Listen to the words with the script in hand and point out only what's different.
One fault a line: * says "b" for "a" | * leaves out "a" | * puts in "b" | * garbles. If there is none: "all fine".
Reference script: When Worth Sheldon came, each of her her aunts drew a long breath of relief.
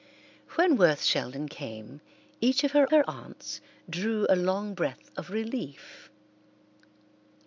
all fine